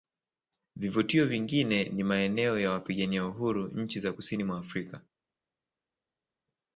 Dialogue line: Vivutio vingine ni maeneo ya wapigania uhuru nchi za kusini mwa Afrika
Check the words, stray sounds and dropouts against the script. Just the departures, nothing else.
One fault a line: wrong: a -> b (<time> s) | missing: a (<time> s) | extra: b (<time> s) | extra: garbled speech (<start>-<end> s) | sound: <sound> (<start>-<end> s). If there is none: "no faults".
no faults